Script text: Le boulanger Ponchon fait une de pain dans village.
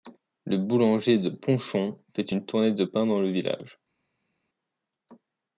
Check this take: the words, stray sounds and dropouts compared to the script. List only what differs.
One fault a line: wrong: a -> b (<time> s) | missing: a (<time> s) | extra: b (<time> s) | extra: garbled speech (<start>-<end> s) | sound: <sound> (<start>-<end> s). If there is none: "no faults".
extra: de (1.2 s)
extra: tournée (2.5 s)
extra: le (3.2 s)